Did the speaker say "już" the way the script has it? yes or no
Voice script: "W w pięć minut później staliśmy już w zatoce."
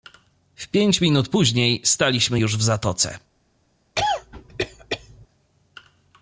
yes